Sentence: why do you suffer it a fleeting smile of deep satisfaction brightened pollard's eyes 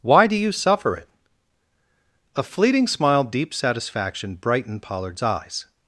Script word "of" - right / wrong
wrong